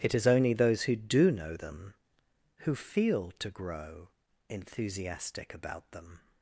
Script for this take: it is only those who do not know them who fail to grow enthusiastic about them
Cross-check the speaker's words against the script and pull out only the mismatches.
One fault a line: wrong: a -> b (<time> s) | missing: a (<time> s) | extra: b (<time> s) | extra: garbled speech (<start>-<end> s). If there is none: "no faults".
missing: not (1.3 s)
wrong: fail -> feel (2.7 s)